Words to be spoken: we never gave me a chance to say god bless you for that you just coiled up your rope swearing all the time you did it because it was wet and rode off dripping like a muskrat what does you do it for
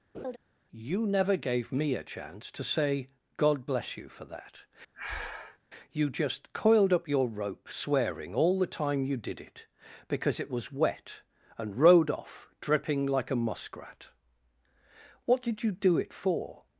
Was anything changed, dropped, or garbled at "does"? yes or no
yes